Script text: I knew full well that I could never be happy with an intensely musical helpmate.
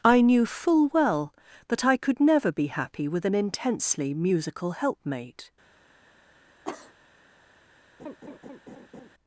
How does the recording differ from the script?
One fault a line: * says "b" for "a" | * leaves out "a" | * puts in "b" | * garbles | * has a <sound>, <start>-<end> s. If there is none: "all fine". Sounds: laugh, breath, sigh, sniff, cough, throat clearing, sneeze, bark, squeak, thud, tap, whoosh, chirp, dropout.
* has a cough, 6.6-6.9 s
* has a laugh, 8.0-9.1 s